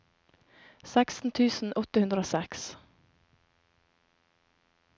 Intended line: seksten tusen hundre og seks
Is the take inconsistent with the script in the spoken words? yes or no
yes